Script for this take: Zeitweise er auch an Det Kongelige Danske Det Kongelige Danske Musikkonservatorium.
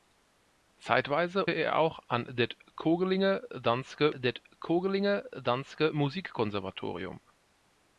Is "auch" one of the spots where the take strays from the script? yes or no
no